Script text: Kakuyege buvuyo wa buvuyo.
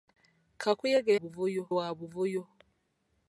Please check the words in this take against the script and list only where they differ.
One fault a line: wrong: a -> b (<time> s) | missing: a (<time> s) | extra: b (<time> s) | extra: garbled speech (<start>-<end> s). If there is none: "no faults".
no faults